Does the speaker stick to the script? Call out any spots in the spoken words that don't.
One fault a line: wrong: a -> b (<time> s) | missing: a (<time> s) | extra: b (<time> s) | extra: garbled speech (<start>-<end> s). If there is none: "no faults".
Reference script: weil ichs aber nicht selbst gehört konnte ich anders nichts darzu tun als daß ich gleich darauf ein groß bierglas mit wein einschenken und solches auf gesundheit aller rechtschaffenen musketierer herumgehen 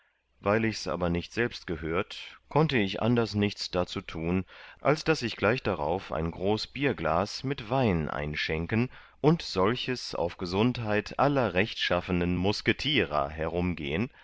no faults